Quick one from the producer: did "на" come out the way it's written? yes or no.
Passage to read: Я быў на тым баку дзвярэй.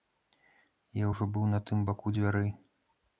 yes